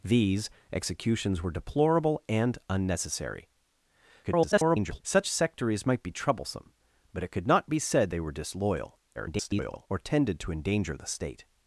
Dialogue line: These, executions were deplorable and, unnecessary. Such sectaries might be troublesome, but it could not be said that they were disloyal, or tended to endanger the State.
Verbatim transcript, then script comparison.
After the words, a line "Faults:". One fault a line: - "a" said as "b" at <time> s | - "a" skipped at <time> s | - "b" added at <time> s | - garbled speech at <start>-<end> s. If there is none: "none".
These, executions were deplorable and, unnecessary. [garbled] Such sectaries might be troublesome, but it could not be said they were disloyal, [garbled] or tended to endanger the State.
Faults:
- garbled speech at 4.2-5.0 s
- "that" skipped at 8.1 s
- garbled speech at 9.1-9.9 s